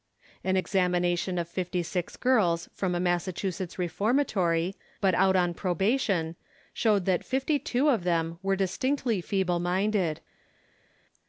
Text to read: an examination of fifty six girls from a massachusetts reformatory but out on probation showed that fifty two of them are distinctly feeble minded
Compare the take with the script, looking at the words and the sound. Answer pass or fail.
fail